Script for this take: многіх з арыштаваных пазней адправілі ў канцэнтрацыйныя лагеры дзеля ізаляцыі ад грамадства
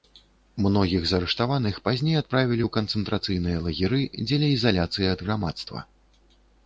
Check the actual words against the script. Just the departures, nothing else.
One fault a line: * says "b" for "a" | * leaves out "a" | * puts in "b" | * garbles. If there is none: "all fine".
all fine